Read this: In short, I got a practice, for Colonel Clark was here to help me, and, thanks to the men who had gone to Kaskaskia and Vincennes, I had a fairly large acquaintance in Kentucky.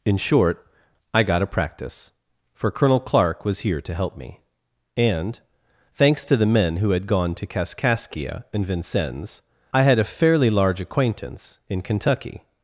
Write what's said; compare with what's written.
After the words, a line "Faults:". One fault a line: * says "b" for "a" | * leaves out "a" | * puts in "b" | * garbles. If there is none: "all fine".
In short, I got a practice, for Colonel Clark was here to help me, and, thanks to the men who had gone to Kaskaskia and Vincennes, I had a fairly large acquaintance in Kentucky.
Faults:
all fine